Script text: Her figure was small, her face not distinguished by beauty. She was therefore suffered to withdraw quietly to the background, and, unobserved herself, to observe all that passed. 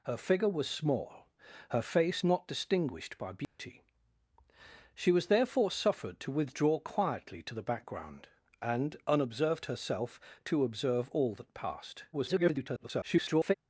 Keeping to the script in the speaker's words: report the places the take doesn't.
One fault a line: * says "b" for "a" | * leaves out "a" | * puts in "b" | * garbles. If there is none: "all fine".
* garbles